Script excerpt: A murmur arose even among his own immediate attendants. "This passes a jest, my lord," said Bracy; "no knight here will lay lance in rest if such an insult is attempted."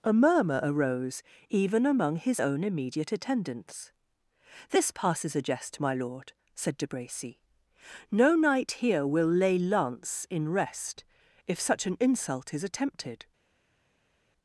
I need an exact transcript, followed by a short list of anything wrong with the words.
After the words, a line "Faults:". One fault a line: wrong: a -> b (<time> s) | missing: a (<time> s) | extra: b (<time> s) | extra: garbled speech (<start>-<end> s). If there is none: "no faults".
A murmur arose even among his own immediate attendants. "This passes a jest, my lord," said De Bracy; "no knight here will lay lance in rest if such an insult is attempted."
Faults:
extra: De (6.8 s)